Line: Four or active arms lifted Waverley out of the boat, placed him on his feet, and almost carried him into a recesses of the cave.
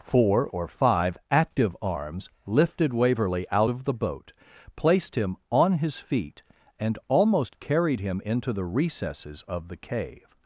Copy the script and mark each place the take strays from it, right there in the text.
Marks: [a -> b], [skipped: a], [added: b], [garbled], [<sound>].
Four or [added: five] active arms lifted Waverley out of the boat, placed him on his feet, and almost carried him into [a -> the] recesses of the cave.